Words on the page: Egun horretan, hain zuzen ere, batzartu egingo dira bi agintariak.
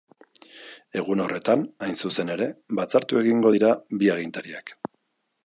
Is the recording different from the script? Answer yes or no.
no